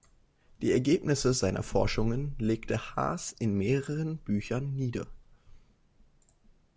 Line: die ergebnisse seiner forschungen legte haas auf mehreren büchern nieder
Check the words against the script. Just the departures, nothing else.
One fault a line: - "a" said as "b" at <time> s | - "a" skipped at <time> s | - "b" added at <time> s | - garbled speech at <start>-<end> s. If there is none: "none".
- "auf" said as "in" at 3.3 s